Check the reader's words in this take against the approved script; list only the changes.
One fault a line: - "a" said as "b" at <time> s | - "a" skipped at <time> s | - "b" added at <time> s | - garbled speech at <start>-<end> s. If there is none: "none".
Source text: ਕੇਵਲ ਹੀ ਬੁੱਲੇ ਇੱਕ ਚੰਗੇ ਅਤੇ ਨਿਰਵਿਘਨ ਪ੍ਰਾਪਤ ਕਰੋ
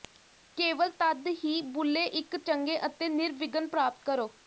- "ਤਦ" added at 1.0 s